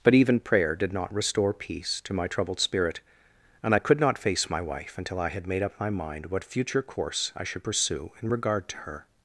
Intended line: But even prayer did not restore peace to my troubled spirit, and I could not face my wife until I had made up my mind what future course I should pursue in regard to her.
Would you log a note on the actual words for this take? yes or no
no